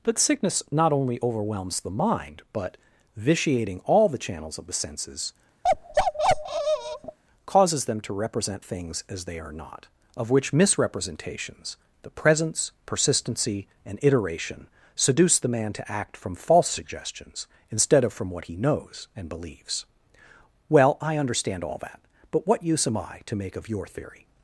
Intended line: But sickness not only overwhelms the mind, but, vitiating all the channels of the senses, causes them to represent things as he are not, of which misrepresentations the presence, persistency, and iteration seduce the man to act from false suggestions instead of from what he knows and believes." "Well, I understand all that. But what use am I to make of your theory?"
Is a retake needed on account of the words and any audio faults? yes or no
yes